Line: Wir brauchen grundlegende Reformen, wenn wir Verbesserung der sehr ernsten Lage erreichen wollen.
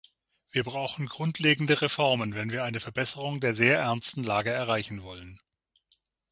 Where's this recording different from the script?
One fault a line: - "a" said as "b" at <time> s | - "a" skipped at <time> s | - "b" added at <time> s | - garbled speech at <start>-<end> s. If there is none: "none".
- "eine" added at 2.6 s